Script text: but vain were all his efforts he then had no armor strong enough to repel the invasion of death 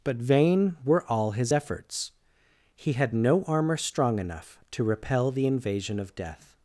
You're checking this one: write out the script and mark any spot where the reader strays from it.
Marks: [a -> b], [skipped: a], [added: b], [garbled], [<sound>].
but vain were all his efforts he [skipped: then] had no armor strong enough to repel the invasion of death